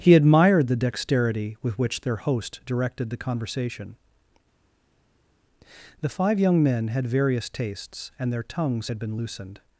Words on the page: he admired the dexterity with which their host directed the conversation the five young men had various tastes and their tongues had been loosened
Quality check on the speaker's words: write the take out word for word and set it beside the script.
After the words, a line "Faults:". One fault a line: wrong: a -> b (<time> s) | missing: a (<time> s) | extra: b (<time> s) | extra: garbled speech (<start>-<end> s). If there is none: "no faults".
he admired the dexterity with which their host directed the conversation the five young men had various tastes and their tongues had been loosened
Faults:
no faults